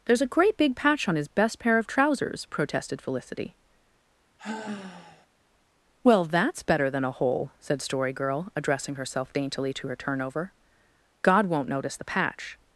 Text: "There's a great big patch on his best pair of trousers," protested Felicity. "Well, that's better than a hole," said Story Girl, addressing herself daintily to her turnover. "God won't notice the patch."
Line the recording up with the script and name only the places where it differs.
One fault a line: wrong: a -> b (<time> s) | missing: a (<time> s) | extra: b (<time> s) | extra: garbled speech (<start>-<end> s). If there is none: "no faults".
no faults